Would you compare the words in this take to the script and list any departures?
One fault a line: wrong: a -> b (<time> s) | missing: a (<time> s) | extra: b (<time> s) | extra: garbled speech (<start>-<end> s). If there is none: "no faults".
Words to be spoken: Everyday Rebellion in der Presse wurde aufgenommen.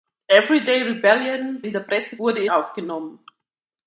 no faults